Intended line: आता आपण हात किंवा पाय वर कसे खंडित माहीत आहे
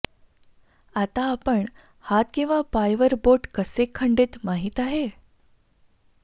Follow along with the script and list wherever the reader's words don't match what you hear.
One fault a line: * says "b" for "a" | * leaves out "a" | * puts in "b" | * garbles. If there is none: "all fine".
* puts in "बोट"